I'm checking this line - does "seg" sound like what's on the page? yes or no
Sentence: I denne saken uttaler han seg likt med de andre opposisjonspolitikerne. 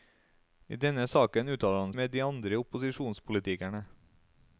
no